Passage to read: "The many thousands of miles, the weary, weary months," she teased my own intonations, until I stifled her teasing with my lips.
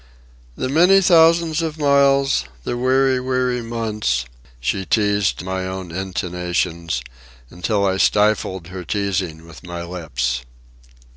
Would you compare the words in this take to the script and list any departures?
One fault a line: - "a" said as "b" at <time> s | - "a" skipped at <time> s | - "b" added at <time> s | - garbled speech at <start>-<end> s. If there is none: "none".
none